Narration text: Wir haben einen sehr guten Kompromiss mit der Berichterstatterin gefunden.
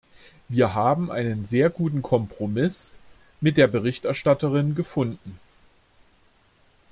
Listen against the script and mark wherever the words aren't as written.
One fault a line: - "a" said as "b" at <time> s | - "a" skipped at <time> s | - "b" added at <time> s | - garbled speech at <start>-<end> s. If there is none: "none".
none